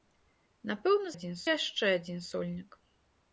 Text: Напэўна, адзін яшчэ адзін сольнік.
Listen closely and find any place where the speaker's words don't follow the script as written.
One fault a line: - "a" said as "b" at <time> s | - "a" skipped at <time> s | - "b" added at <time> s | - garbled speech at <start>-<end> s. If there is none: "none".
none